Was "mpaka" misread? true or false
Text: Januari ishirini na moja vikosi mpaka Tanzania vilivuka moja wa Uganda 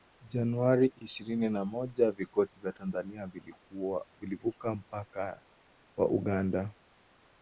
true